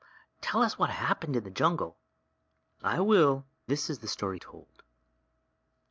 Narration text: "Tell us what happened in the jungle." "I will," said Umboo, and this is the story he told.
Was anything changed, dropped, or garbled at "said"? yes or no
yes